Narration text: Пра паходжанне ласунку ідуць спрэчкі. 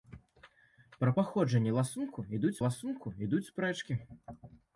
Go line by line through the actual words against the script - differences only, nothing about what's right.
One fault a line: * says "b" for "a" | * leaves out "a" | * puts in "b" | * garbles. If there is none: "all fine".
* puts in "ласунку ідуць"